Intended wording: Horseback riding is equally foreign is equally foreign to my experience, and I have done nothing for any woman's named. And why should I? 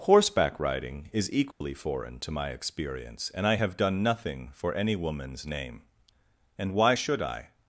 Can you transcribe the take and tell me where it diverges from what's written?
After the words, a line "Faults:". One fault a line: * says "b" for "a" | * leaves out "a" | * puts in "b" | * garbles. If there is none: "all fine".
Horseback riding is equally foreign to my experience, and I have done nothing for any woman's name. And why should I?
Faults:
* leaves out "is equally foreign"
* says "name" for "named"